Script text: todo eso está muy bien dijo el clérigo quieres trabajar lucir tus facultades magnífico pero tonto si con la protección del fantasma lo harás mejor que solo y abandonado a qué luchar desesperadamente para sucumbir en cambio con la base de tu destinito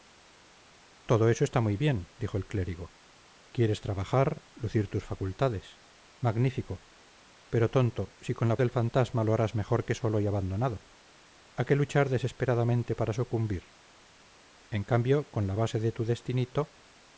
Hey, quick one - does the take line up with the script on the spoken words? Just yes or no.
no